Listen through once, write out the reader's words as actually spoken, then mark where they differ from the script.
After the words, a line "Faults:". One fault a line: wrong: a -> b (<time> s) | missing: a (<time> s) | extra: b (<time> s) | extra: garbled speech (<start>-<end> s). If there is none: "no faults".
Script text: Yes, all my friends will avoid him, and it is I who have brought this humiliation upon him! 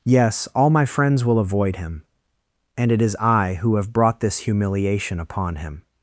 Yes, all my friends will avoid him, and it is I who have brought this humiliation upon him!
Faults:
no faults